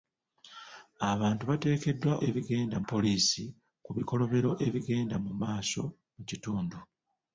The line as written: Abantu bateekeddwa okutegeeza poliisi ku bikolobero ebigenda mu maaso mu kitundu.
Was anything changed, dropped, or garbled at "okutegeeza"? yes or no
yes